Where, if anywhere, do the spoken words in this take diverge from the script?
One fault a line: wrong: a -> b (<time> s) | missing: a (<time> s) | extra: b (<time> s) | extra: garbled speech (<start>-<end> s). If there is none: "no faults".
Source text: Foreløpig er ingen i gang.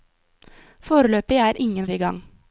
no faults